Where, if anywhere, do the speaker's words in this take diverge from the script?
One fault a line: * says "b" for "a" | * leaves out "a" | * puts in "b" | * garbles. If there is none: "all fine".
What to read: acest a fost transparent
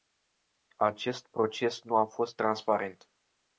* puts in "proces nu"